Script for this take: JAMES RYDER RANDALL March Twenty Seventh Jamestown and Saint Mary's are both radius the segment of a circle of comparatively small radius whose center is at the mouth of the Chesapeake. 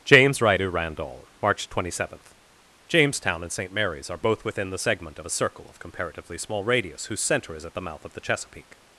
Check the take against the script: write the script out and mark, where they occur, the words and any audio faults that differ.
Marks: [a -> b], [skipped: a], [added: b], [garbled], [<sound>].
JAMES RYDER RANDALL March Twenty Seventh Jamestown and Saint Mary's are both [radius -> within] the segment of a circle of comparatively small radius whose center is at the mouth of the Chesapeake.